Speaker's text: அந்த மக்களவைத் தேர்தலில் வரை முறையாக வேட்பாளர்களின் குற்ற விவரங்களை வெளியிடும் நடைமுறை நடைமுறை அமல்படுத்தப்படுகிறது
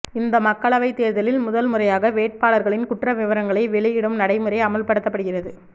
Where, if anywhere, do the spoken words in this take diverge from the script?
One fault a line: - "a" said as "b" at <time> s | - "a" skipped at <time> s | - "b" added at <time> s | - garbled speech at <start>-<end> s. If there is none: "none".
- "அந்த" said as "இந்த" at 0.1 s
- "வரை" said as "முதல்" at 1.4 s
- "நடைமுறை" skipped at 4.6 s